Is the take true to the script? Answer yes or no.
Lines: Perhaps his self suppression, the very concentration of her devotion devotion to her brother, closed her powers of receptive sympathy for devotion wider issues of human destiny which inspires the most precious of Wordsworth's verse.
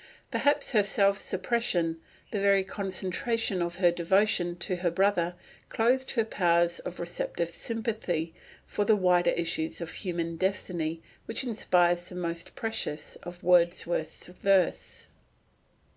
no